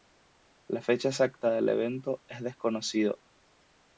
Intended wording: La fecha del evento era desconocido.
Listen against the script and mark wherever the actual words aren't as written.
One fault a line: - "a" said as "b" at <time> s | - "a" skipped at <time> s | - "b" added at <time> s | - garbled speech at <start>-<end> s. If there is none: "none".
- "exacta" added at 1.1 s
- "era" said as "es" at 2.3 s